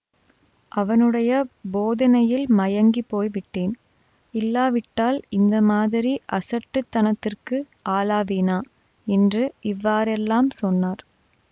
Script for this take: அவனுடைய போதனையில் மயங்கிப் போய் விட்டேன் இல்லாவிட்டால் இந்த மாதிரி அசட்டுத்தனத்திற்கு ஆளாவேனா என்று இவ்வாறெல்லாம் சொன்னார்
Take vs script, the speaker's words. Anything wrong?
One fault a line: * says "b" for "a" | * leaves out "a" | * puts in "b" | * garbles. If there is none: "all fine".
all fine